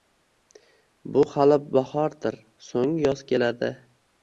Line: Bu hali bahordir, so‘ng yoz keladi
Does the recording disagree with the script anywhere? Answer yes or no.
no